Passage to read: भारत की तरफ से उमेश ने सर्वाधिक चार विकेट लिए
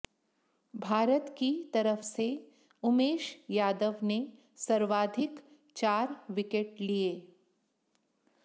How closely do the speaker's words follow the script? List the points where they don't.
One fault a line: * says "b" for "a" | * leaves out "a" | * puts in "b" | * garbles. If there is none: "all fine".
* puts in "यादव"